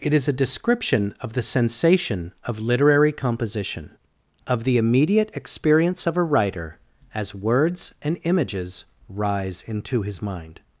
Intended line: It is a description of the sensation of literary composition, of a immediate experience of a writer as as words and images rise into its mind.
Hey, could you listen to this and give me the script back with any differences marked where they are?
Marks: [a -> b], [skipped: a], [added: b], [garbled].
It is a description of the sensation of literary composition, of [a -> the] immediate experience of a writer as [skipped: as] words and images rise into [its -> his] mind.